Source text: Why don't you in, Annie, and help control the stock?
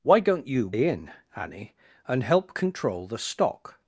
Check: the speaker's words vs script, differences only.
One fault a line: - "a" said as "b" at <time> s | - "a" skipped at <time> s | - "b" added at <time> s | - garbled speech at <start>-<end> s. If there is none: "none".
none